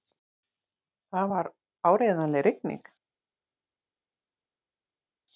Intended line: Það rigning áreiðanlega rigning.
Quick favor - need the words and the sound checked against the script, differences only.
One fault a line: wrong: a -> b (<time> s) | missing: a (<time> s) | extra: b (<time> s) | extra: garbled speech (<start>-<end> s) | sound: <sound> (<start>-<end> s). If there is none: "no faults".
wrong: rigning -> var (1.3 s)